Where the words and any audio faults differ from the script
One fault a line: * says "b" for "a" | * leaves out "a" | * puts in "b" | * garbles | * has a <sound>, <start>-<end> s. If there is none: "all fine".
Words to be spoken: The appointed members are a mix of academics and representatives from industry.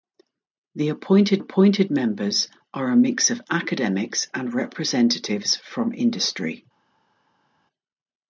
* puts in "appointed"